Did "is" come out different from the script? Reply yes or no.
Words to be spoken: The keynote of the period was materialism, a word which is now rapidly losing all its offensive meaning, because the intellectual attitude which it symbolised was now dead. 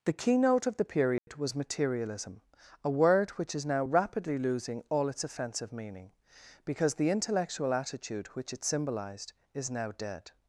no